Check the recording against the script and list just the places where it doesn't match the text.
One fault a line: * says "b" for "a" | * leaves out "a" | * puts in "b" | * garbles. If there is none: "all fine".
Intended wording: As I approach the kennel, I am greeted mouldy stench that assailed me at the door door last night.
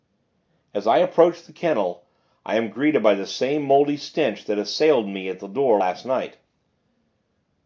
* puts in "by the same"
* leaves out "door"